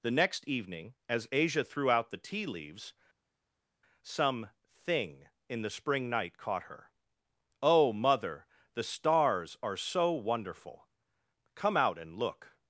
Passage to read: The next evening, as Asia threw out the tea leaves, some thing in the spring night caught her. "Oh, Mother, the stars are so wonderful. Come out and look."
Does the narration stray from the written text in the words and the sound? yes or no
no